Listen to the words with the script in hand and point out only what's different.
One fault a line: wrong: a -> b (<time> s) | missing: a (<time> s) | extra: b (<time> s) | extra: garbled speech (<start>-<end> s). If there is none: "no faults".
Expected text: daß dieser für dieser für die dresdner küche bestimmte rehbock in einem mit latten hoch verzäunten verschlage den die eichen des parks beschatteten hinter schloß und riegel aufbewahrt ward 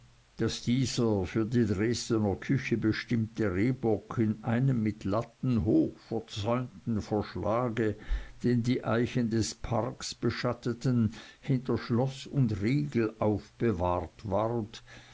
missing: dieser für (1.4 s)